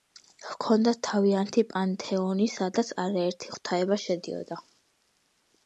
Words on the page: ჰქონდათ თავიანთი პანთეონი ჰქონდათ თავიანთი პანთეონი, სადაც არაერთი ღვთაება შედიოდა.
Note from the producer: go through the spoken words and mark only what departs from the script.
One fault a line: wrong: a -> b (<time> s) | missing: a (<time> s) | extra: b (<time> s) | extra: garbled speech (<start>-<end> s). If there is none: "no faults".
missing: ჰქონდათ თავიანთი პანთეონი (2.5 s)